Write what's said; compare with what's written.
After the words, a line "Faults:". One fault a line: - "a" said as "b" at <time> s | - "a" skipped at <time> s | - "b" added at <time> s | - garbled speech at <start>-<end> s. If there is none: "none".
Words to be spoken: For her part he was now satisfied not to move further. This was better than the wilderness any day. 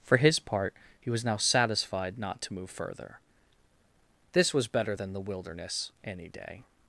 For his part he was now satisfied not to move further. This was better than the wilderness any day.
Faults:
- "her" said as "his" at 0.2 s